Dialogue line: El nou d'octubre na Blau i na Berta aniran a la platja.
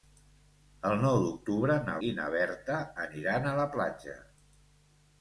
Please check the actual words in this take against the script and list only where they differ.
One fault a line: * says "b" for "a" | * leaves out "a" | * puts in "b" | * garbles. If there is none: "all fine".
* leaves out "Blau"